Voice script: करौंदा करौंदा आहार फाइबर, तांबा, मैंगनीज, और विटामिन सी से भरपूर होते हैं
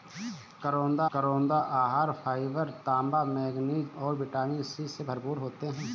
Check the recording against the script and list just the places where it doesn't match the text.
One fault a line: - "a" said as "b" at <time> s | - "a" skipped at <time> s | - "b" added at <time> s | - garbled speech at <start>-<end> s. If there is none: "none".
none